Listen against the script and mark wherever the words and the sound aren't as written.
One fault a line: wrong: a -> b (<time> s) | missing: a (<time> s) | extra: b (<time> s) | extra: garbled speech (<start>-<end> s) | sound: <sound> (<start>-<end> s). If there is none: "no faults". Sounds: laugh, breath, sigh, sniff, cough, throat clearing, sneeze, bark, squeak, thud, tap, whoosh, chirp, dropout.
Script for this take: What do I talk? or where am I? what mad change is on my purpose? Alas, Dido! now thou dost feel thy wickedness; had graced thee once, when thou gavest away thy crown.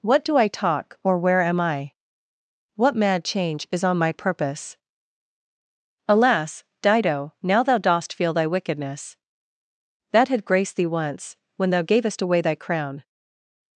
extra: that (10.1 s)